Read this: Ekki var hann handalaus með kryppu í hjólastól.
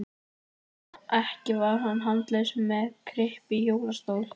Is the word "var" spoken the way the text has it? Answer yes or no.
yes